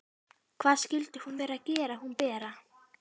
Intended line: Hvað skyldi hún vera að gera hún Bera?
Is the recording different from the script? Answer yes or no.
no